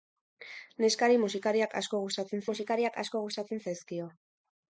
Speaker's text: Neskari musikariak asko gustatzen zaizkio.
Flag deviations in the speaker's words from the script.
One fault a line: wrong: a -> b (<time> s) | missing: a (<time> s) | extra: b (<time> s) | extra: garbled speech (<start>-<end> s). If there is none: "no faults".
extra: musikariak asko gustatzen (2.5 s)